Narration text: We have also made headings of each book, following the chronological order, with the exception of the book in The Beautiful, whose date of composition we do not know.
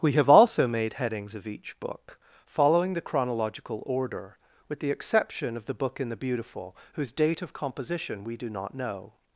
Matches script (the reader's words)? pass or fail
pass